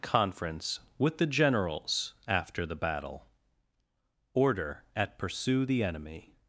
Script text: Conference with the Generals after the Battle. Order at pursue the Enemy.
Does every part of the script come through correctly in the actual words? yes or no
yes